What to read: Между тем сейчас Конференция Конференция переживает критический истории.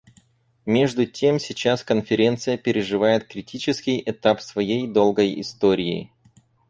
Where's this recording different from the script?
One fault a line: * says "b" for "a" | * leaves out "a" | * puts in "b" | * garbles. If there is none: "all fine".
* leaves out "Конференция"
* puts in "этап своей долгой"